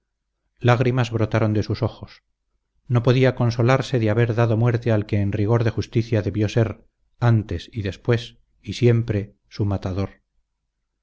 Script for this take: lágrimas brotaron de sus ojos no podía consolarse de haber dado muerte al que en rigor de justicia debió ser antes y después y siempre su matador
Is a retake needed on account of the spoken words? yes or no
no